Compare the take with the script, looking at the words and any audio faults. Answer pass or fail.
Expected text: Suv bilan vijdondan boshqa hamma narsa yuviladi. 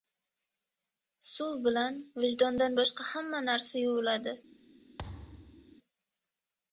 fail